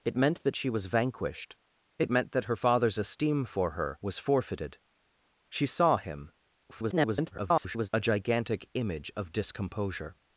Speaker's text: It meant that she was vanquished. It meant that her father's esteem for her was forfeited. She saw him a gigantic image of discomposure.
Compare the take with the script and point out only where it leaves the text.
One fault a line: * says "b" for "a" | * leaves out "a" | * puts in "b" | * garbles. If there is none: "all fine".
* garbles